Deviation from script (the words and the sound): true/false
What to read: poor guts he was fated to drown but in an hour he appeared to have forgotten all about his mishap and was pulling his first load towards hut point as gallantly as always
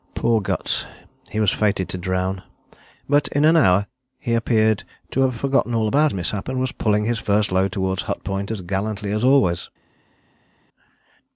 true